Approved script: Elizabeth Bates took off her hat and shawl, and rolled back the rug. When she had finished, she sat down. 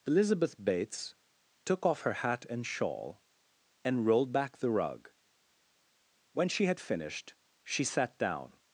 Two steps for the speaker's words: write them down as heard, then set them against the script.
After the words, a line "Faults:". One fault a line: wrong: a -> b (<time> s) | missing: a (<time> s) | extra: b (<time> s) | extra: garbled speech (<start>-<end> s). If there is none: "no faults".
Elizabeth Bates took off her hat and shawl, and rolled back the rug. When she had finished, she sat down.
Faults:
no faults